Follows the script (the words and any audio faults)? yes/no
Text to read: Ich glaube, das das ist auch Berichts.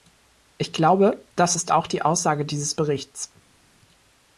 no